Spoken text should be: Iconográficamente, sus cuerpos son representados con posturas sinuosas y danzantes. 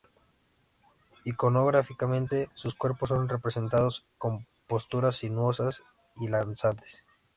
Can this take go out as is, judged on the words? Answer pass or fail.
pass